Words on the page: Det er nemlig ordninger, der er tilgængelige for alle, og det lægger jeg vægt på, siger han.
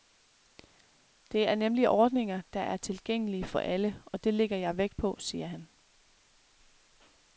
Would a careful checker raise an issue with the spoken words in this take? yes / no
no